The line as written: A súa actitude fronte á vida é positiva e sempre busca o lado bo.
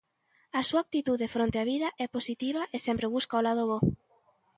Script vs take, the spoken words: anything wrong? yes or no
no